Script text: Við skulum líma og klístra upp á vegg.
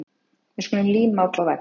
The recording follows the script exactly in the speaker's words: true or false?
false